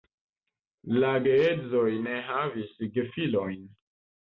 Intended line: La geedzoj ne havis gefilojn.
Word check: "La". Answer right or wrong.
right